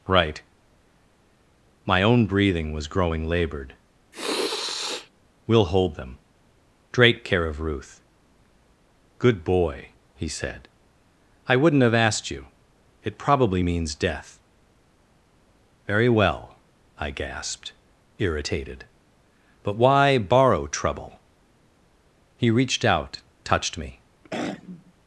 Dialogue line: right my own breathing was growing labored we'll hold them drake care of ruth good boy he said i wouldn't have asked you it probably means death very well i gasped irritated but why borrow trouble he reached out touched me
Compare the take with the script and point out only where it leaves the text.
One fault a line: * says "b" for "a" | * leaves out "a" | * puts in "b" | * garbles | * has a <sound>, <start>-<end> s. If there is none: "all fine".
* has a sniff, 4.1-5.1 s
* has a throat clearing, 24.2-24.9 s